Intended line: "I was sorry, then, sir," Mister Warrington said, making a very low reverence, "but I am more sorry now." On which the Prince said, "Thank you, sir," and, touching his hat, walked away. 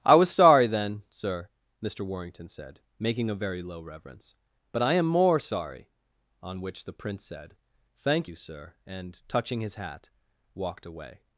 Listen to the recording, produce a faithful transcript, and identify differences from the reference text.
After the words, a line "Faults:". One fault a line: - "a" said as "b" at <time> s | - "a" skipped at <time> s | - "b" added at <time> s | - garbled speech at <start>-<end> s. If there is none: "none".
"I was sorry, then, sir," Mister Warrington said, making a very low reverence, "but I am more sorry." On which the Prince said, "Thank you, sir," and, touching his hat, walked away.
Faults:
- "now" skipped at 5.9 s